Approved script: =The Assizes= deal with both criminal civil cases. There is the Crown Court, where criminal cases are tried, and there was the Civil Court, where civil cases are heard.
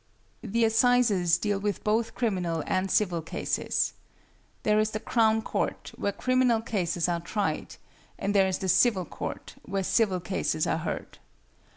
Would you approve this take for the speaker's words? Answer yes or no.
no